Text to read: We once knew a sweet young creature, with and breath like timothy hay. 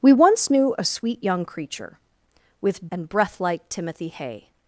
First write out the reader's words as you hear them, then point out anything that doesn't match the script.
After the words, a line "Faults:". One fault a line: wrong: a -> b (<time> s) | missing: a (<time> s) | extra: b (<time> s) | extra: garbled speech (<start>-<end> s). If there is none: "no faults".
We once knew a sweet young creature, with and breath like timothy hay.
Faults:
no faults